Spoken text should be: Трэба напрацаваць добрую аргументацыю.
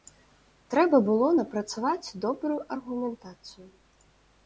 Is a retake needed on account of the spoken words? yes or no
yes